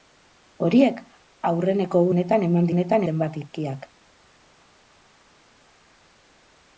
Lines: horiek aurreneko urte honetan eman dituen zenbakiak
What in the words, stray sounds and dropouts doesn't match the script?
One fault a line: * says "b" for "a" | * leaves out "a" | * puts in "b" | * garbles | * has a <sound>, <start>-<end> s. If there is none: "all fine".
* leaves out "urte"
* says "honetan" for "dituen"